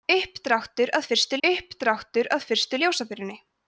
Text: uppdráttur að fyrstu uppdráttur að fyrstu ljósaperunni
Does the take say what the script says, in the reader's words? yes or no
yes